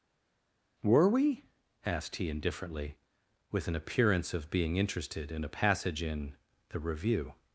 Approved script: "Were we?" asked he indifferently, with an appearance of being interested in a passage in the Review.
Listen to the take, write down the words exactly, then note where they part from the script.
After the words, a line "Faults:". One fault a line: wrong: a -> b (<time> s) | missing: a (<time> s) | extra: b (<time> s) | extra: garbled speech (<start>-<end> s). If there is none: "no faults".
"Were we?" asked he indifferently, with an appearance of being interested in a passage in the Review.
Faults:
no faults